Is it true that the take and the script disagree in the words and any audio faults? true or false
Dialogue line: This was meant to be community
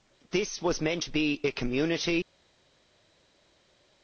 true